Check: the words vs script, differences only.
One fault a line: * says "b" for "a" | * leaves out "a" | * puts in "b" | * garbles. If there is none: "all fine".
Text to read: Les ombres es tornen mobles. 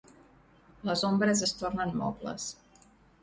all fine